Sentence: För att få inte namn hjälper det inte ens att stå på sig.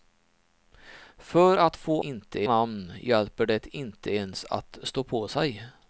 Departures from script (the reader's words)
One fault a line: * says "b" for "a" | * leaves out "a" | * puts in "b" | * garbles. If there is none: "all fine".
all fine